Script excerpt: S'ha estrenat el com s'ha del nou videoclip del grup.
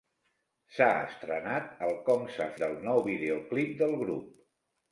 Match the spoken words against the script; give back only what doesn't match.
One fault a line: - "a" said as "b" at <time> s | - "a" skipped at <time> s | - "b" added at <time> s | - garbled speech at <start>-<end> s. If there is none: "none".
none